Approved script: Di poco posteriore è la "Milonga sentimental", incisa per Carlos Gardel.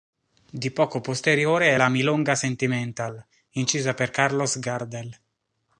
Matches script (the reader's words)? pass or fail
pass